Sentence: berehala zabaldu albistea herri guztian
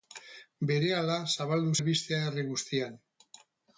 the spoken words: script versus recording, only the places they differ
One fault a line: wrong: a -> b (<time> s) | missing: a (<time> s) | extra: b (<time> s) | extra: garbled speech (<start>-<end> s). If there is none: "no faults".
no faults